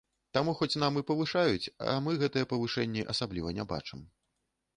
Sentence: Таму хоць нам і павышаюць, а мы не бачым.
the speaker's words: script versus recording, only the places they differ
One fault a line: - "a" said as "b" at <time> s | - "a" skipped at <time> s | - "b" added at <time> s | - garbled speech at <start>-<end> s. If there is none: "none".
- "гэтыя павышэнні асабліва" added at 2.2 s